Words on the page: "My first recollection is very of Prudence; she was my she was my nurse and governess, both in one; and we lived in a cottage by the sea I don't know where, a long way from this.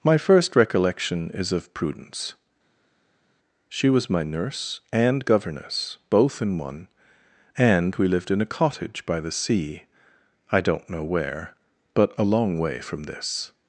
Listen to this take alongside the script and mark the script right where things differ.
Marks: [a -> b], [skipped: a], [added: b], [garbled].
"My first recollection is [skipped: very] of Prudence; she was my [skipped: she was my] nurse and governess, both in one; and we lived in a cottage by the sea I don't know where, [added: but] a long way from this.